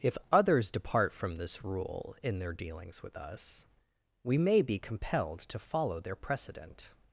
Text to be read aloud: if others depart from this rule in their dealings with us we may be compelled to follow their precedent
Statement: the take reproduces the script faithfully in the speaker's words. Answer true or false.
true